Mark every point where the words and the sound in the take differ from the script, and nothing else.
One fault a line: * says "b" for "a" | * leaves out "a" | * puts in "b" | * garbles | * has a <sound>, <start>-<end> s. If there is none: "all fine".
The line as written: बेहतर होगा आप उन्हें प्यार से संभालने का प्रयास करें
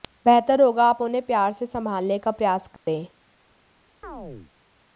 * has a dropout, 2.8-2.9 s
* has a chirp, 4.0-4.5 s